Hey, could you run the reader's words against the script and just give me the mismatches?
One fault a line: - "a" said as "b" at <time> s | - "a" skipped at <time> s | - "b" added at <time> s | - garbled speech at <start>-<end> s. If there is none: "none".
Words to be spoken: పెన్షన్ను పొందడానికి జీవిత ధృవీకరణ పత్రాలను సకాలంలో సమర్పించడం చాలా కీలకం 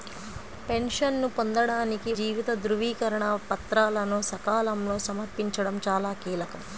none